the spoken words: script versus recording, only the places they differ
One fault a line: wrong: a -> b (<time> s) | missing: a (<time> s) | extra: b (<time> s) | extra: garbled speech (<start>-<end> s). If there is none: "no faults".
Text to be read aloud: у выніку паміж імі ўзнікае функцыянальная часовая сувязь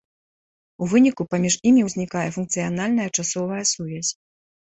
no faults